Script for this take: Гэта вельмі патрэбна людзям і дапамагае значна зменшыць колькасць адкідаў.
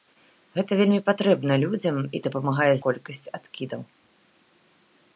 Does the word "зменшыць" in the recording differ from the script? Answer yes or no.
yes